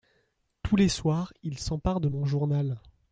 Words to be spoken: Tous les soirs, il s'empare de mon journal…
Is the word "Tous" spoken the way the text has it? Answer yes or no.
yes